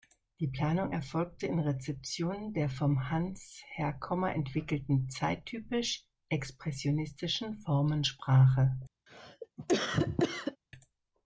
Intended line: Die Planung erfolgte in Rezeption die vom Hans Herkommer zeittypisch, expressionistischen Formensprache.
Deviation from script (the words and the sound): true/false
true